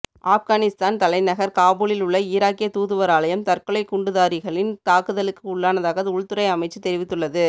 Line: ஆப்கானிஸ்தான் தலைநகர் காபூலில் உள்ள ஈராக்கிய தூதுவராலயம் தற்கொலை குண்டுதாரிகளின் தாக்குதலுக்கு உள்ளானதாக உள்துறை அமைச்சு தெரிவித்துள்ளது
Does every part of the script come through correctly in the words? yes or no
yes